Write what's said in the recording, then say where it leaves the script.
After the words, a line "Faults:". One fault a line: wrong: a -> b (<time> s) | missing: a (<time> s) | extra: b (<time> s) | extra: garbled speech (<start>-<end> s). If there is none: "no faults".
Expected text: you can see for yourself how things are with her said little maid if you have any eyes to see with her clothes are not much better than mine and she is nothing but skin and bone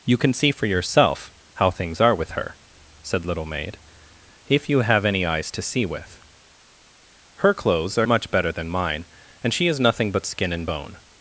you can see for yourself how things are with her said little maid if you have any eyes to see with her clothes are much better than mine and she is nothing but skin and bone
Faults:
missing: not (8.1 s)